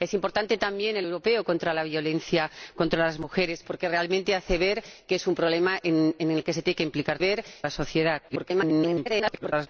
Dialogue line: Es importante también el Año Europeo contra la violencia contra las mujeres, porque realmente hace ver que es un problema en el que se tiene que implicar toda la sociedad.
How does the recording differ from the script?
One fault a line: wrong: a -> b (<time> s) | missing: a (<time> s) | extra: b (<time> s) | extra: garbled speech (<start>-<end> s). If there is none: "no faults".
missing: Año (1.1 s)
wrong: toda -> ver (7.2 s)
extra: garbled speech (8.3-9.7 s)